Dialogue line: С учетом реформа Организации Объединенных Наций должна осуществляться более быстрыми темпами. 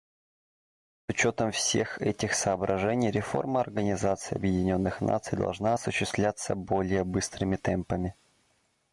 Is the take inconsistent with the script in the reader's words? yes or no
yes